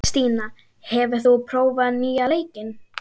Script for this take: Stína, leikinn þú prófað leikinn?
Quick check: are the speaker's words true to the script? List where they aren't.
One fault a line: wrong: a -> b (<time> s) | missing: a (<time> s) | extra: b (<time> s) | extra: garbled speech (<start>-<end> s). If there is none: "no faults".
wrong: leikinn -> hefur (0.9 s)
extra: nýja (2.0 s)